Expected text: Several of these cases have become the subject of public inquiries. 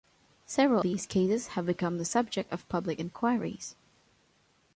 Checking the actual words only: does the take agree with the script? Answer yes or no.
no